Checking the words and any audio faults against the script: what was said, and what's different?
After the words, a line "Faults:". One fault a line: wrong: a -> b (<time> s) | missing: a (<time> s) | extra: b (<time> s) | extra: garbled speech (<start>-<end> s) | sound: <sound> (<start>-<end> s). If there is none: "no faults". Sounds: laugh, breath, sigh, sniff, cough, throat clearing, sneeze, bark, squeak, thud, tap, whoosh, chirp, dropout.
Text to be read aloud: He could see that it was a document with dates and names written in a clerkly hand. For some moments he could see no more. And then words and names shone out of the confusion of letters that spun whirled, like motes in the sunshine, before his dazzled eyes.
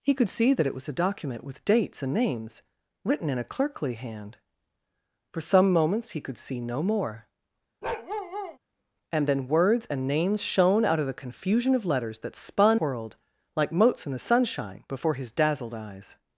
He could see that it was a document with dates and names written in a clerkly hand. For some moments he could see no more. And then words and names shone out of the confusion of letters that spun whirled, like motes in the sunshine, before his dazzled eyes.
Faults:
sound: bark (7.8-8.6 s)